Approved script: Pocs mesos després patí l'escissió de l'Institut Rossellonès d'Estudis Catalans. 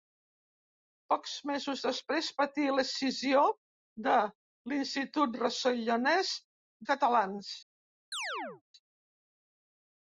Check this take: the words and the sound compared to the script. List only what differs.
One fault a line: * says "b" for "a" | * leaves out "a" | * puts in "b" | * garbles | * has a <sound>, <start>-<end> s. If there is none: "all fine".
* leaves out "d'Estudis"
* has a chirp, 8.1-8.6 s